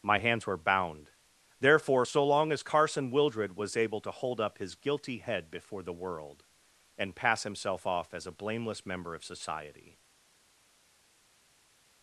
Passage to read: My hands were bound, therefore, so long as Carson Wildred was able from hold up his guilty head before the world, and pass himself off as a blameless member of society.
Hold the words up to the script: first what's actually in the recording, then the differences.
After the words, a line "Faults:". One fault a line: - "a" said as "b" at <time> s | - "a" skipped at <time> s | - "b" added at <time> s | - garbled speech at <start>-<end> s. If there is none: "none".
My hands were bound, therefore, so long as Carson Wildred was able to hold up his guilty head before the world, and pass himself off as a blameless member of society.
Faults:
- "from" said as "to" at 4.0 s